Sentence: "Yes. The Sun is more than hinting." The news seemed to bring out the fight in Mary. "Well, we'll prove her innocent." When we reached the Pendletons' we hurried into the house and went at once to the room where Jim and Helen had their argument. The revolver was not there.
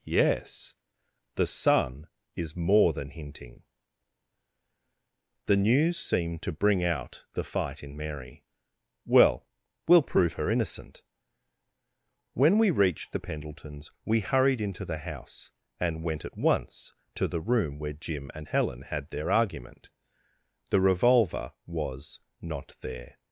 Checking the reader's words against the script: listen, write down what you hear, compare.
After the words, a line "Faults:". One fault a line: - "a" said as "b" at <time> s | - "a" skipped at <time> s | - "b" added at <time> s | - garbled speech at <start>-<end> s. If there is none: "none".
"Yes. The Sun is more than hinting." The news seemed to bring out the fight in Mary. "Well, we'll prove her innocent." When we reached the Pendletons' we hurried into the house and went at once to the room where Jim and Helen had their argument. The revolver was not there.
Faults:
none